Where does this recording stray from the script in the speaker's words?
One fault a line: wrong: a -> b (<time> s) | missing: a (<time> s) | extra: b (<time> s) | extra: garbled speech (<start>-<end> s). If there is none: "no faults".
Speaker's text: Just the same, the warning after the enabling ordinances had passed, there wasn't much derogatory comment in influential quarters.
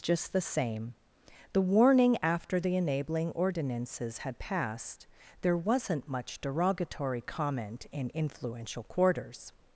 no faults